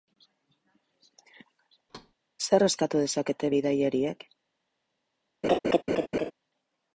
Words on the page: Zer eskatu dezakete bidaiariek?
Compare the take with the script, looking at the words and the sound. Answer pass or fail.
fail